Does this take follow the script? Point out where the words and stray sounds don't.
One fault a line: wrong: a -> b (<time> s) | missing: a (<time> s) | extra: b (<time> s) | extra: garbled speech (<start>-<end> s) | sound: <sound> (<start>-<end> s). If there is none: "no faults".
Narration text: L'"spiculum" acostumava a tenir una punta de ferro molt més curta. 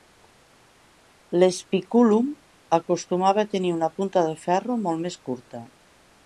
no faults